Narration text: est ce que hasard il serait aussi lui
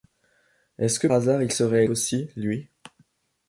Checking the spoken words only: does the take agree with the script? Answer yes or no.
yes